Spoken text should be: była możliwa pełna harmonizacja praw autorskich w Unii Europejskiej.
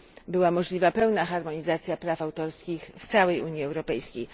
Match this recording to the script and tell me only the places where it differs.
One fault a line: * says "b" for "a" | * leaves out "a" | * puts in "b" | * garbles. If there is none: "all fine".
* puts in "całej"